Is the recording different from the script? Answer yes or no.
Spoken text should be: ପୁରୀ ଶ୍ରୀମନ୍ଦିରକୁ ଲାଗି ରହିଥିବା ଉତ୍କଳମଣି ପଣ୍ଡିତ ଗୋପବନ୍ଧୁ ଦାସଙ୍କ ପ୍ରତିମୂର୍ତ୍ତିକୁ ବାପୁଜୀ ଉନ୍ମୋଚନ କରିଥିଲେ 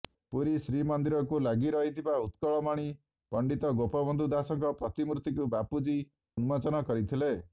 no